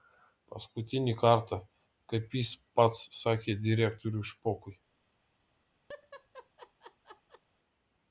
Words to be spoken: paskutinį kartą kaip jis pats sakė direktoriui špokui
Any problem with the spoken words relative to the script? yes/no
no